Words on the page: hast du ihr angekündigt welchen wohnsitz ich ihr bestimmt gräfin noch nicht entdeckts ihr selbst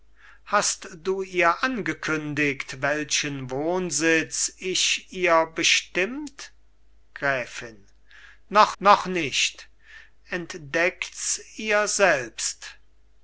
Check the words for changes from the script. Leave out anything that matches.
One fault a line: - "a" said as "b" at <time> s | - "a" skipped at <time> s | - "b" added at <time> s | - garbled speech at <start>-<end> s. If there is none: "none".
- "noch" added at 8.8 s